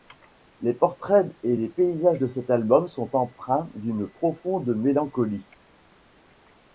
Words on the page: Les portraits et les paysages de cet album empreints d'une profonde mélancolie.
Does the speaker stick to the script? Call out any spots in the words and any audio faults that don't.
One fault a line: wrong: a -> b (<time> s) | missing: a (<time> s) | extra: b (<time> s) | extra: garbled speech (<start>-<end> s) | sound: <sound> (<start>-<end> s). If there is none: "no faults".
extra: sont (2.8 s)